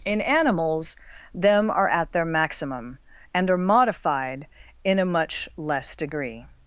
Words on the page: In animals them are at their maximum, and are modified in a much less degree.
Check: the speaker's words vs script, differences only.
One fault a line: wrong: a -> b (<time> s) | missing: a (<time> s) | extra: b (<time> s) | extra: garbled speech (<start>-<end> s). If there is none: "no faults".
no faults